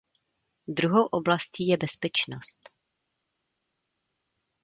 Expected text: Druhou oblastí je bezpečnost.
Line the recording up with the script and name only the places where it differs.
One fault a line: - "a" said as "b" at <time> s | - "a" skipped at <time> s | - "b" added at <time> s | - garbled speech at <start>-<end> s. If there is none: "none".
none